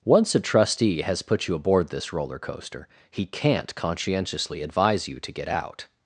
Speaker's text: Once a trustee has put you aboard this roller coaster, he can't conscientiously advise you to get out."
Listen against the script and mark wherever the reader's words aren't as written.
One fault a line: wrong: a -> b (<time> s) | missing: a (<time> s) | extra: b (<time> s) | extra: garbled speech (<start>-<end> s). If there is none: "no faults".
no faults